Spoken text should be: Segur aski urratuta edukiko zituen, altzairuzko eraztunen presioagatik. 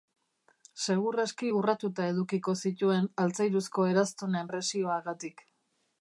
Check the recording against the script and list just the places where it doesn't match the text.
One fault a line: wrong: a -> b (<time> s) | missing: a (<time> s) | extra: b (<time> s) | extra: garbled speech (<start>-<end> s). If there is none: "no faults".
no faults